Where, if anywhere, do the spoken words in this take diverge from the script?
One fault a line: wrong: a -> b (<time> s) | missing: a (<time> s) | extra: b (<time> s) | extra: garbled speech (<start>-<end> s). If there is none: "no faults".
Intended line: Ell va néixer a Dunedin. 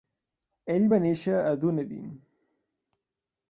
no faults